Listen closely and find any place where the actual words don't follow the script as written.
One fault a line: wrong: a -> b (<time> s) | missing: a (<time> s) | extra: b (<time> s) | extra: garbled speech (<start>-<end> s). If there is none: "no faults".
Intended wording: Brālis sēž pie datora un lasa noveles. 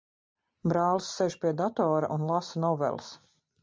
no faults